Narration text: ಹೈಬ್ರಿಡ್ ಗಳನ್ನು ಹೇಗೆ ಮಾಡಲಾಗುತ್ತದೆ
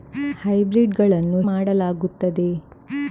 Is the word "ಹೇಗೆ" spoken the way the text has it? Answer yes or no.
no